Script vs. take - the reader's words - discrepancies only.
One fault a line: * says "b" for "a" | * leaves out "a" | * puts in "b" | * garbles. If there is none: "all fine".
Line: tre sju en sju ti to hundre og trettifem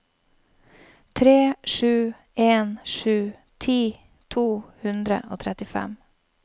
all fine